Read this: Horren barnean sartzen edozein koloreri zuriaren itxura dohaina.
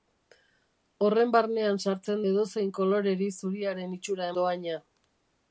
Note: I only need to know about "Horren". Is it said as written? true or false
true